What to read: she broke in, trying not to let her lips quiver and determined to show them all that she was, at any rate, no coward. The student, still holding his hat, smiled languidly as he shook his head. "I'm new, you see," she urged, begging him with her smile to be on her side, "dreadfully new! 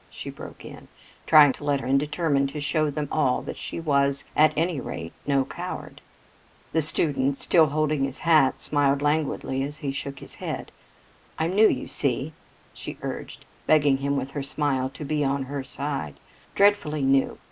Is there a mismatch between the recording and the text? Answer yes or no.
yes